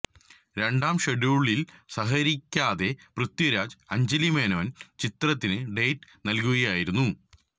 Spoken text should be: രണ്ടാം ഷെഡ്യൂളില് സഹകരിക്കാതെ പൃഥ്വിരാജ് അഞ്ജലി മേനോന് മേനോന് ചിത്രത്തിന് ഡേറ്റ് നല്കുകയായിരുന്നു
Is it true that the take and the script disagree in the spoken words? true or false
true